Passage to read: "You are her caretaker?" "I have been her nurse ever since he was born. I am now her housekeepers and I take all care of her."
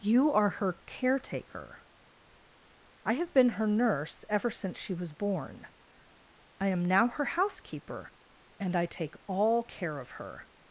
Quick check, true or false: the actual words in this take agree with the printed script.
false